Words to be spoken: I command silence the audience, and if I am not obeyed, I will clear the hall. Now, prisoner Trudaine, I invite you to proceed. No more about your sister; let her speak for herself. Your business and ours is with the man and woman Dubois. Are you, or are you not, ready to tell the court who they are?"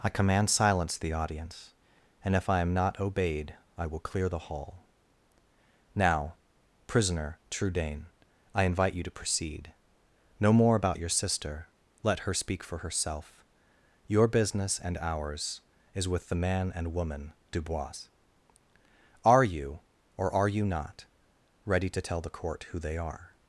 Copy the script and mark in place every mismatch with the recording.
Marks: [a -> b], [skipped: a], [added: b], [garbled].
I command silence the audience, and if I am not obeyed, I will clear the hall. Now, prisoner Trudaine, I invite you to proceed. No more about your sister; let her speak for herself. Your business and ours is with the man and woman Dubois. Are you, or are you not, ready to tell the court who they are?"